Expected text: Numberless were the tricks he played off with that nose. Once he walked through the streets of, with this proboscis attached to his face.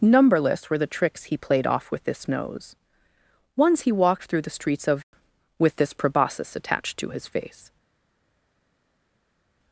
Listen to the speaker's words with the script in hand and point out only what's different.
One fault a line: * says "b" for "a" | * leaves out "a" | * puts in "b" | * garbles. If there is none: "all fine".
* says "this" for "that"